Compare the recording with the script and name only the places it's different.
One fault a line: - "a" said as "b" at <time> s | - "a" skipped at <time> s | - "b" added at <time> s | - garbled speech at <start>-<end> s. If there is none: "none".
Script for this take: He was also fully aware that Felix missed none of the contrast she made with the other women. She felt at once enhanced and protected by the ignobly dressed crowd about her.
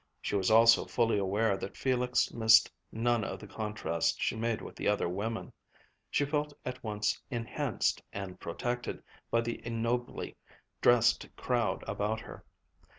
- "He" said as "She" at 0.2 s